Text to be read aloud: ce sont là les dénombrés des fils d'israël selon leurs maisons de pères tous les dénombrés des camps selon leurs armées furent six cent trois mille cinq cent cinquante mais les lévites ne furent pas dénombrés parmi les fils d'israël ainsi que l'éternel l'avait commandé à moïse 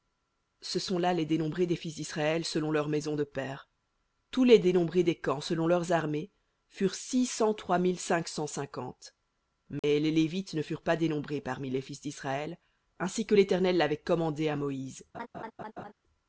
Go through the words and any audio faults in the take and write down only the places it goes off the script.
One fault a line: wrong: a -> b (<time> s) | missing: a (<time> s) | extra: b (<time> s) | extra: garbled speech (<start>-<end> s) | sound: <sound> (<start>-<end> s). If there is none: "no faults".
sound: dropout (9.8-9.8 s)
sound: laugh (15.1-15.9 s)